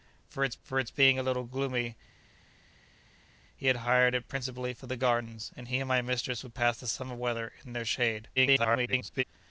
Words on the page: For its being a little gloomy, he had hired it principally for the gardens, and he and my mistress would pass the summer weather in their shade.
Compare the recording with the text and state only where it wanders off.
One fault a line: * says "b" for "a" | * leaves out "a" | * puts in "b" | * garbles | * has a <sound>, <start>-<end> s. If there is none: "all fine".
* puts in "for its"
* garbles